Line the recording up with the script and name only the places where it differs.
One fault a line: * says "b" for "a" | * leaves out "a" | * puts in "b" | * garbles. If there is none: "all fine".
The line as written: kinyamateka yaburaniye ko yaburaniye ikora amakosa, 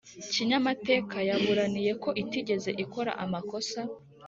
* says "itigeze" for "yaburaniye"